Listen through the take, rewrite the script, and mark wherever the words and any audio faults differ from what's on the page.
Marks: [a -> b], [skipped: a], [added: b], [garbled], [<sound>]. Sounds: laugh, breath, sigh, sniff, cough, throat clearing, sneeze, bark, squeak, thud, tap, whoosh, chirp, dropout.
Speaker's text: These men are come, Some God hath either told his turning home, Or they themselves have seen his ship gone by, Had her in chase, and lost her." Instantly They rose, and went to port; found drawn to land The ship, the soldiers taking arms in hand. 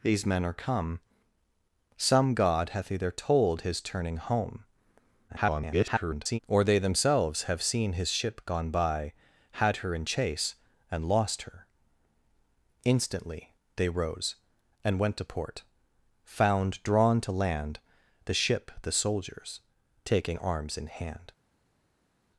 These men are come, Some God hath either told his turning home, [garbled] Or they themselves have seen his ship gone by, Had her in chase, and lost her." Instantly They rose, and went to port; found drawn to land The ship, the soldiers taking arms in hand.